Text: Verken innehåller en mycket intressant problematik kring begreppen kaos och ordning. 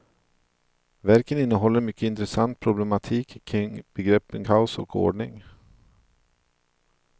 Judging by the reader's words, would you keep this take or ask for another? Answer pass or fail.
pass